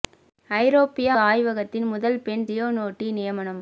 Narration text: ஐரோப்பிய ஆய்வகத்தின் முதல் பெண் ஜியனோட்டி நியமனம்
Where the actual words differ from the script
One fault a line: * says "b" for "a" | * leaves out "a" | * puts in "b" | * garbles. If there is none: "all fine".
all fine